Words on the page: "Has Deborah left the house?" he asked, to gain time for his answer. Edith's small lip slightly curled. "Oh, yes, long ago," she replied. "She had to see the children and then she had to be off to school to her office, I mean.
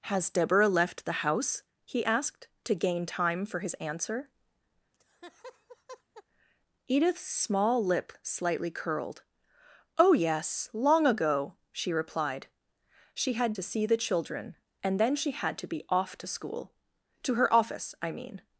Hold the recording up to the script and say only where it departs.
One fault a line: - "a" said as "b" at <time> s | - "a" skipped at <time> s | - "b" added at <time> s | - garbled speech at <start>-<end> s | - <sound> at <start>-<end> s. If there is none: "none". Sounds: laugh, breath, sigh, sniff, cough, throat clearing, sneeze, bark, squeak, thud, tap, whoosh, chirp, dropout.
- laugh at 4.9-6.2 s